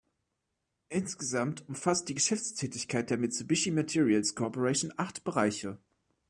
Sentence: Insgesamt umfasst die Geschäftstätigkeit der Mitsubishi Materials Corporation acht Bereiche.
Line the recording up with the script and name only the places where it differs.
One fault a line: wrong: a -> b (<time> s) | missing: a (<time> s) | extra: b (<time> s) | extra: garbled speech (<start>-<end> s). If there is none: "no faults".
no faults